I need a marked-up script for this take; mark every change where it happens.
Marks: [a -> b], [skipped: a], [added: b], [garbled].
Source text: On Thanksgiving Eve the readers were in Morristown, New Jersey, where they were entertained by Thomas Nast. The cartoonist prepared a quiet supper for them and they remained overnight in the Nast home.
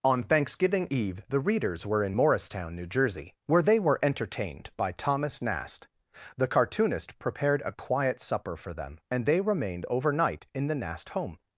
On Thanksgiving Eve the readers were in Morristown, New Jersey, where they were entertained by Thomas Nast. The cartoonist prepared a quiet supper for them and they remained overnight in the Nast home.